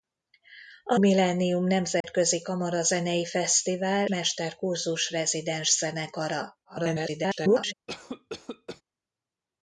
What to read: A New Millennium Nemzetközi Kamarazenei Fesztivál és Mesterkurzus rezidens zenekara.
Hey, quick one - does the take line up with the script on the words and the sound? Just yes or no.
no